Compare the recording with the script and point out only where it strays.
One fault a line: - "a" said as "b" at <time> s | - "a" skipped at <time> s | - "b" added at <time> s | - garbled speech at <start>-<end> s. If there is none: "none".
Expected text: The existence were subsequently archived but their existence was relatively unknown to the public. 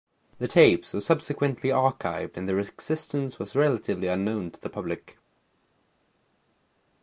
- "existence" said as "tapes" at 0.4 s
- "but" said as "and" at 2.4 s